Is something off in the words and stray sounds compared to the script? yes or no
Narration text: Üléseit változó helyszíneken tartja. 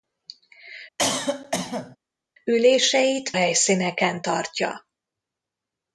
yes